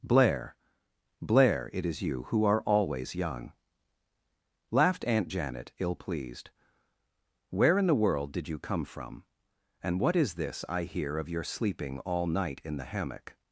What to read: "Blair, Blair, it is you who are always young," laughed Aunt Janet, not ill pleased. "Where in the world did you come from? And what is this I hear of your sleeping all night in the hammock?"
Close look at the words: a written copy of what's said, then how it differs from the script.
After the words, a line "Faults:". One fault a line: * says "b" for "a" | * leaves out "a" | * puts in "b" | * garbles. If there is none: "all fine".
"Blair, Blair, it is you who are always young," laughed Aunt Janet, ill pleased. "Where in the world did you come from? And what is this I hear of your sleeping all night in the hammock?"
Faults:
* leaves out "not"